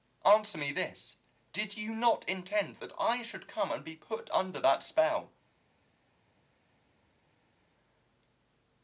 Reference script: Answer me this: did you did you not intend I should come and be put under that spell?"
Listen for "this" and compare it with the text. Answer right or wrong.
right